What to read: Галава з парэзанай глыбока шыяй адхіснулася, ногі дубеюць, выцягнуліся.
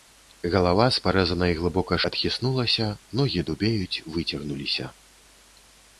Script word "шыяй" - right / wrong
wrong